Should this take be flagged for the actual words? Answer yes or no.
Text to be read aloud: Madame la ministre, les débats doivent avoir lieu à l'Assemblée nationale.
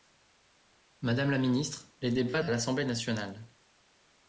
yes